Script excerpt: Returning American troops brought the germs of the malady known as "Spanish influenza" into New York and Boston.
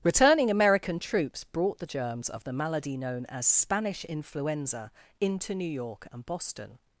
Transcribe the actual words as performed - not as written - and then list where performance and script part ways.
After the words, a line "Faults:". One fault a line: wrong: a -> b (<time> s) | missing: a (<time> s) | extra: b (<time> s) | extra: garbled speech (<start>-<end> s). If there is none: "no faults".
Returning American troops brought the germs of the malady known as "Spanish influenza" into New York and Boston.
Faults:
no faults